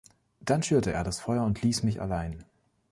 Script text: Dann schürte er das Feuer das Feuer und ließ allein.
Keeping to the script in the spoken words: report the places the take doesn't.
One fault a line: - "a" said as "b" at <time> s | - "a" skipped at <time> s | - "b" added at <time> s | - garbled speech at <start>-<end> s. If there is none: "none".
- "das Feuer" skipped at 1.4 s
- "mich" added at 1.8 s